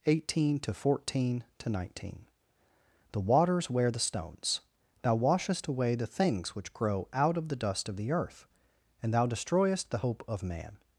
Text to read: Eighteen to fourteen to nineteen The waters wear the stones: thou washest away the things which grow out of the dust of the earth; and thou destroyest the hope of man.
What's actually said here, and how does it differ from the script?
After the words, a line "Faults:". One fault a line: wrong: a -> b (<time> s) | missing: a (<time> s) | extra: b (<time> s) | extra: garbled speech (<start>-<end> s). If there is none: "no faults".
Eighteen to fourteen to nineteen The waters wear the stones: thou washest away the things which grow out of the dust of the earth; and thou destroyest the hope of man.
Faults:
no faults